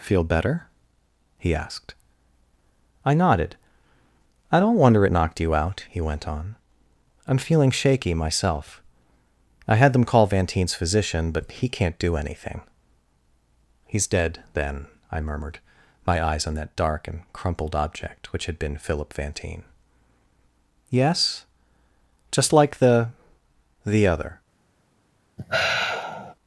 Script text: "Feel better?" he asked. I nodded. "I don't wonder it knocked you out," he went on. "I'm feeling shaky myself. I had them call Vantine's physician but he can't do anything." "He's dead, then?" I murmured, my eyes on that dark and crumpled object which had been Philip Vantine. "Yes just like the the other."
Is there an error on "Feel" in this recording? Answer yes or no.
no